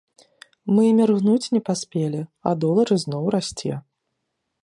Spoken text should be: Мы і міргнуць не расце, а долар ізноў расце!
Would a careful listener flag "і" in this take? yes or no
no